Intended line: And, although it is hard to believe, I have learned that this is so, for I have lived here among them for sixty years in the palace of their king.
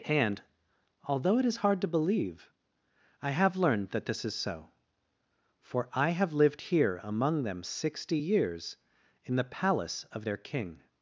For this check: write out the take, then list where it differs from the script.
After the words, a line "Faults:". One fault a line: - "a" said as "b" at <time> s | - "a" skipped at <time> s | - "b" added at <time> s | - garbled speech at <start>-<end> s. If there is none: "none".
And, although it is hard to believe, I have learned that this is so, for I have lived here among them sixty years in the palace of their king.
Faults:
- "for" skipped at 7.6 s